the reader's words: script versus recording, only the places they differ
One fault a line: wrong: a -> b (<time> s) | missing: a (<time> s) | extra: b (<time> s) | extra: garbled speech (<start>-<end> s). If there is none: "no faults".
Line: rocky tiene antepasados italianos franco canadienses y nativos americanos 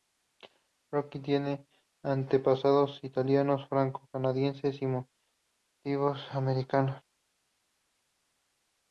no faults